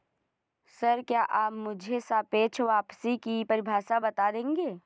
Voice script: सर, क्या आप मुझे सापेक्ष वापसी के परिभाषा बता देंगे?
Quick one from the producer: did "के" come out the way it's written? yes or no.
no